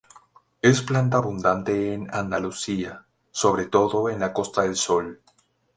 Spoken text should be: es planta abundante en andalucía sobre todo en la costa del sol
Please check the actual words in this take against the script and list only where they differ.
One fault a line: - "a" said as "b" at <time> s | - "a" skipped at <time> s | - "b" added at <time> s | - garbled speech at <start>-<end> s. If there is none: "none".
none